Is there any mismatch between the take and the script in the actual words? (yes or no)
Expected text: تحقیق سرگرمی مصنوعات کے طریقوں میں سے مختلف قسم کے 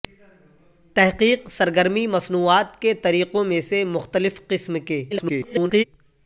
yes